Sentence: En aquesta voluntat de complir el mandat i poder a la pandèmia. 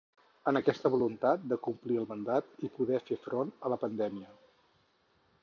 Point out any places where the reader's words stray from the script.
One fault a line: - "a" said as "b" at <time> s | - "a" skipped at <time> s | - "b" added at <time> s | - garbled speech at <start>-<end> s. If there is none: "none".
- "fer front" added at 3.1 s